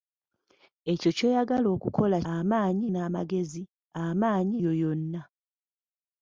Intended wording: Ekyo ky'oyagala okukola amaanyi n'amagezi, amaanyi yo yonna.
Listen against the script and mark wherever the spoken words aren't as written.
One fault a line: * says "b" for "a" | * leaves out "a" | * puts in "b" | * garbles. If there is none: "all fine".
all fine